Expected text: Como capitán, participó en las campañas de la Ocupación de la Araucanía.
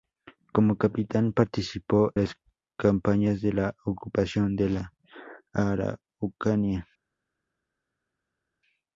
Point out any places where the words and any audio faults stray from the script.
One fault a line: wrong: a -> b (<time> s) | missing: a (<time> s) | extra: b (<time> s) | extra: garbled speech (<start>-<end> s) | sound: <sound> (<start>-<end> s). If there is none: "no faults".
missing: en (2.1 s)